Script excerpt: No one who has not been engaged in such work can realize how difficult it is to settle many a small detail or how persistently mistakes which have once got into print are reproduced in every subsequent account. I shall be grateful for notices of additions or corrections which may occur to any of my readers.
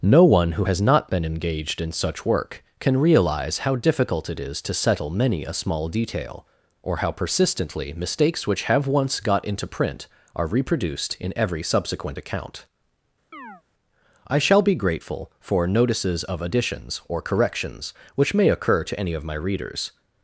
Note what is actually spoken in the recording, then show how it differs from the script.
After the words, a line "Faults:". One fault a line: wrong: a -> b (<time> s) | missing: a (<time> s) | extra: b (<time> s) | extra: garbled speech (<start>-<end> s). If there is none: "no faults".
No one who has not been engaged in such work can realize how difficult it is to settle many a small detail or how persistently mistakes which have once got into print are reproduced in every subsequent account. I shall be grateful for notices of additions or corrections which may occur to any of my readers.
Faults:
no faults